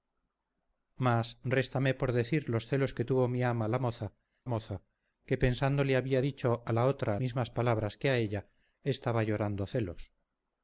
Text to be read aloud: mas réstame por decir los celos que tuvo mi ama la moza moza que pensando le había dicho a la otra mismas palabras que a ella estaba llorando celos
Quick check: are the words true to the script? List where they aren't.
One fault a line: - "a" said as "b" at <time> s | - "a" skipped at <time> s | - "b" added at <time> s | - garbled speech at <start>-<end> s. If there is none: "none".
none